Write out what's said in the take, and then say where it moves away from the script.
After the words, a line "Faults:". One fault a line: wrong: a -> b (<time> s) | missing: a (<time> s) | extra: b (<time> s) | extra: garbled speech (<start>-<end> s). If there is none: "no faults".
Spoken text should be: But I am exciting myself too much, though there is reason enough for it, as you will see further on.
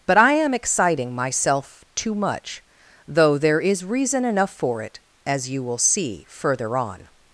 But I am exciting myself too much, though there is reason enough for it, as you will see further on.
Faults:
no faults